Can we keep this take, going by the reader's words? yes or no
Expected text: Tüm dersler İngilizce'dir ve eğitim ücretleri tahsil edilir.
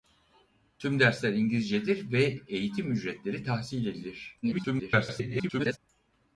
no